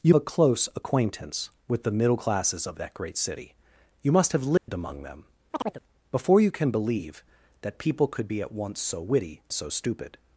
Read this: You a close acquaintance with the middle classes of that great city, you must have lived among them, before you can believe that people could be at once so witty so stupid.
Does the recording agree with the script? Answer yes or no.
yes